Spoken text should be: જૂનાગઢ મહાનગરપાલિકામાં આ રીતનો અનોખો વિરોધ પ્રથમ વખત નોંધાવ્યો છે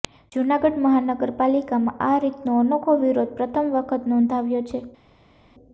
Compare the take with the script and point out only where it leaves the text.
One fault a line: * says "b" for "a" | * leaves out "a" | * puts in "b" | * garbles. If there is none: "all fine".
all fine